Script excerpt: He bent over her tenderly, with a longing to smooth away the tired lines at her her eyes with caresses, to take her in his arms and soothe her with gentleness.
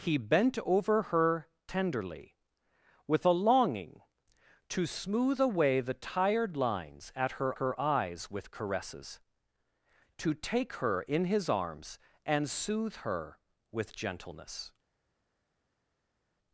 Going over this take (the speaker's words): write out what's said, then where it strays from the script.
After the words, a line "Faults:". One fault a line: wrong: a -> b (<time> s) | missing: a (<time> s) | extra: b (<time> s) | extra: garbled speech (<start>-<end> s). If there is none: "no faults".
He bent over her tenderly, with a longing to smooth away the tired lines at her her eyes with caresses, to take her in his arms and soothe her with gentleness.
Faults:
no faults